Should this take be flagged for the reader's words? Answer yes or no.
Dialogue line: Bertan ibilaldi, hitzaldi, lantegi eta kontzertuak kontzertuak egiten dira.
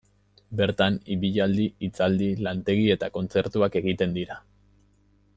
yes